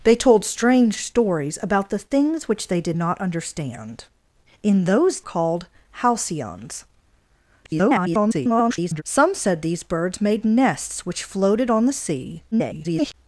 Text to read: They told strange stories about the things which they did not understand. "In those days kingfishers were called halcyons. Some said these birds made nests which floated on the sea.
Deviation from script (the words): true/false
true